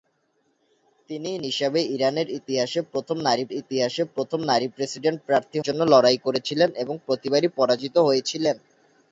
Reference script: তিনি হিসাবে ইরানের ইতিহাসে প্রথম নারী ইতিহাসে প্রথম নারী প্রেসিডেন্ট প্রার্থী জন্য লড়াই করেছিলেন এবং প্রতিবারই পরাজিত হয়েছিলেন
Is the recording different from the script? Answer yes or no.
no